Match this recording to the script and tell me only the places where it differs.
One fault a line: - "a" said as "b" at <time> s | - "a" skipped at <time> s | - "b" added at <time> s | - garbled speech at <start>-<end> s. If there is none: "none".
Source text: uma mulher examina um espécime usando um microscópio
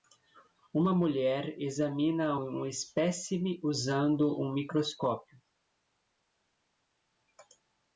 none